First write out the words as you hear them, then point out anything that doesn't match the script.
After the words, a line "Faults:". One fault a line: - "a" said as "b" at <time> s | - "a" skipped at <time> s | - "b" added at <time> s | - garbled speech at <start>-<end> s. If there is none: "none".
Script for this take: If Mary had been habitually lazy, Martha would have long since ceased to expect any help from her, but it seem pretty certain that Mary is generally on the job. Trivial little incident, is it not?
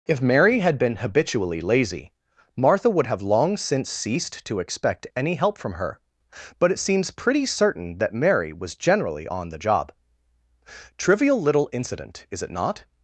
If Mary had been habitually lazy, Martha would have long since ceased to expect any help from her, but it seems pretty certain that Mary was generally on the job. Trivial little incident, is it not?
Faults:
- "seem" said as "seems" at 6.8 s
- "is" said as "was" at 8.5 s